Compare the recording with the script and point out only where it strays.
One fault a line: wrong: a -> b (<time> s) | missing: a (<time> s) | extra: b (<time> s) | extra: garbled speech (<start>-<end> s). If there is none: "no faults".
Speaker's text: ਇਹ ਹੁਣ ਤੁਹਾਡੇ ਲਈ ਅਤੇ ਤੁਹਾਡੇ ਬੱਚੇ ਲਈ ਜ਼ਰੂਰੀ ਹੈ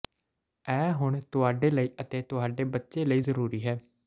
no faults